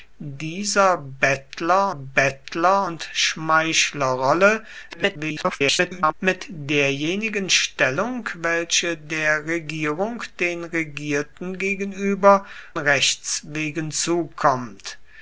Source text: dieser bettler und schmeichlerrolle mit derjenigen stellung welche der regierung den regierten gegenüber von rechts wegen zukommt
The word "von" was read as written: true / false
false